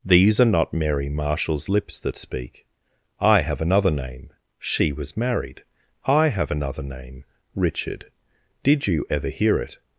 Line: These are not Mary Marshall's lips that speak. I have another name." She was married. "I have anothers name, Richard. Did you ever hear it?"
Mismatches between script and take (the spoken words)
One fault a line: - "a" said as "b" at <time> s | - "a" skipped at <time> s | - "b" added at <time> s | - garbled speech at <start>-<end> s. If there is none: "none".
- "anothers" said as "another" at 6.5 s